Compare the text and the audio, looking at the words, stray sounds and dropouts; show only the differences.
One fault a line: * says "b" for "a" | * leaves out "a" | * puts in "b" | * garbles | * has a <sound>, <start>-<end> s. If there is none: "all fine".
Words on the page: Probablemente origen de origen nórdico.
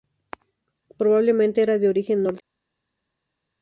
* says "era" for "origen"